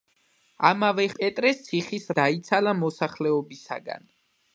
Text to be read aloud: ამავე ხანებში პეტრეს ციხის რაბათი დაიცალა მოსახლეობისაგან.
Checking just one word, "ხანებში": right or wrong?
wrong